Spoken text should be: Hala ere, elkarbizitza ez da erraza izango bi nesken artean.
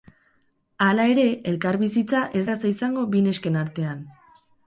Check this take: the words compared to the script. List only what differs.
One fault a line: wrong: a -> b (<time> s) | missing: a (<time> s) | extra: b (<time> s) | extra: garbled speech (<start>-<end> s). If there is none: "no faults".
missing: da (2.4 s)